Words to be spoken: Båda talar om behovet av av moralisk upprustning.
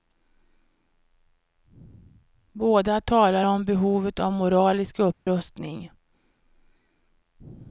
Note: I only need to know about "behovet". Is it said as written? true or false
true